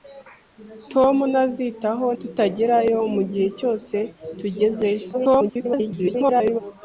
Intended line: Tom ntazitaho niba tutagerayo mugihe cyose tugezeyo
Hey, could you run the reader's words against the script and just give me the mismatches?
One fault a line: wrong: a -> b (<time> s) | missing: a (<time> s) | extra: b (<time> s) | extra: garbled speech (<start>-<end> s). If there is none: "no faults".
missing: niba (2.1 s)
extra: garbled speech (5.1-6.6 s)